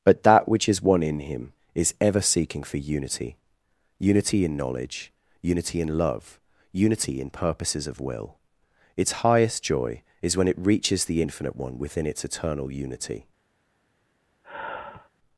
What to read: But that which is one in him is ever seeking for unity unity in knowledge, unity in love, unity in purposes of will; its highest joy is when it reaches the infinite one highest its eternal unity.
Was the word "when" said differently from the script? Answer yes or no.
no